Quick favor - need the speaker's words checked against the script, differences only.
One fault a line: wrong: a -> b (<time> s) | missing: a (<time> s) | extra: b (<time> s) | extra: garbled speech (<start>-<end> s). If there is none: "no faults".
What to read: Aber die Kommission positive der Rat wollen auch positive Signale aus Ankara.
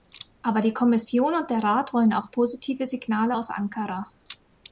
wrong: positive -> und (1.3 s)